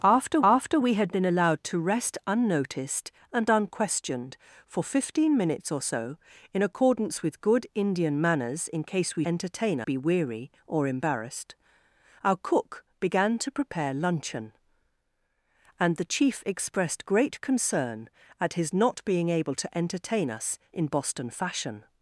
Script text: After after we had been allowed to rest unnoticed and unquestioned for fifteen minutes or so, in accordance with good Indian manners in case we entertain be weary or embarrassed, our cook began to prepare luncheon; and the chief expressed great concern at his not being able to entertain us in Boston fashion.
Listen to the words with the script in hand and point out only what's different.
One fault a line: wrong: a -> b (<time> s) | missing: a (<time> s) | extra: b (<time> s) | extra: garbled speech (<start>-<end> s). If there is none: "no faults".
no faults